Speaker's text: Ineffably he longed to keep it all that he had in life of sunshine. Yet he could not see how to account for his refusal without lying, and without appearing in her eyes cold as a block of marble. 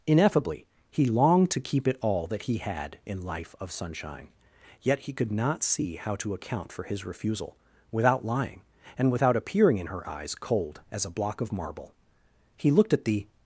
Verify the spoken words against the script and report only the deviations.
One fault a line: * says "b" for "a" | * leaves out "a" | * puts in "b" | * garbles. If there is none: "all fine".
* puts in "He looked at the"